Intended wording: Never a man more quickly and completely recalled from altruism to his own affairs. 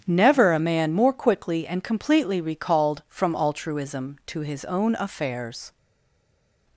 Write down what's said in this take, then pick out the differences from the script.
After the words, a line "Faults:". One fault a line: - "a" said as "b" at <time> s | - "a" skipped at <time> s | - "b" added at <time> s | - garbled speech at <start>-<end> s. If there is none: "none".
Never a man more quickly and completely recalled from altruism to his own affairs.
Faults:
none